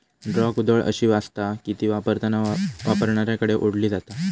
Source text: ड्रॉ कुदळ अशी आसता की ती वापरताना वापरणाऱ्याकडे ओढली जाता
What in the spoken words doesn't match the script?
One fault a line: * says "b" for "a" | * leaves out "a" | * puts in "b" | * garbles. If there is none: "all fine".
all fine